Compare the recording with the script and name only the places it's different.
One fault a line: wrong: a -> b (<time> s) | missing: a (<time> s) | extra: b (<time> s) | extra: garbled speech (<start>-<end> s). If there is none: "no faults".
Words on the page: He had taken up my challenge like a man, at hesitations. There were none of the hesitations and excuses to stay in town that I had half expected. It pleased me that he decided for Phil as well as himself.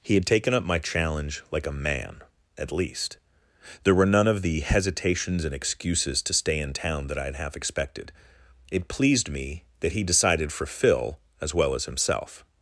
wrong: hesitations -> least (2.7 s)